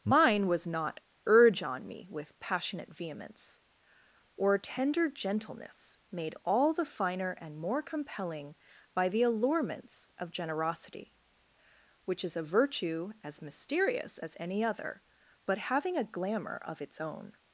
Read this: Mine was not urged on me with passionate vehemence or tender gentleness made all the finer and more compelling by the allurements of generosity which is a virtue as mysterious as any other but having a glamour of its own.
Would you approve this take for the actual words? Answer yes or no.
no